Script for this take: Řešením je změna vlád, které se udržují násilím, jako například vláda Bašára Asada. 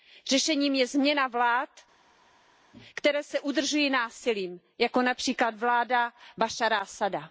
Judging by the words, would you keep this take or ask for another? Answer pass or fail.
pass